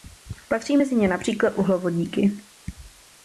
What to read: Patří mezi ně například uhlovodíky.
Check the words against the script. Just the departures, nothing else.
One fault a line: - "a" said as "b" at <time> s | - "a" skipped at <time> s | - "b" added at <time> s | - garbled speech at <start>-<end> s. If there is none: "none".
none